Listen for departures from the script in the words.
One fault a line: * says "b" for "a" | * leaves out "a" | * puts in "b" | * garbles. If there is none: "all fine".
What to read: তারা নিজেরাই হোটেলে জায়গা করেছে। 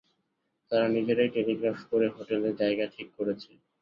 * puts in "টেলিগ্রাফ করে"
* puts in "ঠিক"